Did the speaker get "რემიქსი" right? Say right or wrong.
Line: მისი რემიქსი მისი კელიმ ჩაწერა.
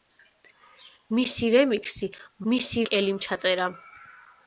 right